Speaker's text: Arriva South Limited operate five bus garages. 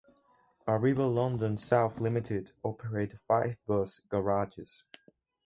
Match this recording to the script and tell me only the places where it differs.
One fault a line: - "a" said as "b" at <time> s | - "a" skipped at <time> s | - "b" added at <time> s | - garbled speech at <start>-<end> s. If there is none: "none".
- "London" added at 1.1 s